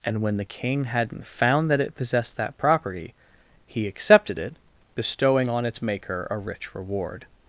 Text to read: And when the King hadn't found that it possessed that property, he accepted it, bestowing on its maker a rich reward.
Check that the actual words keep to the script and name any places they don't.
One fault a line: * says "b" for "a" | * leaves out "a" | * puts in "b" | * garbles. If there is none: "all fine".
all fine